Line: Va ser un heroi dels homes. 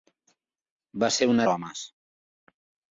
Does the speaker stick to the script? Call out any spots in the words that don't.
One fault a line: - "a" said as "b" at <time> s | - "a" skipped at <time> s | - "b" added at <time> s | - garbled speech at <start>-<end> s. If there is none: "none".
- "heroi dels" skipped at 1.4 s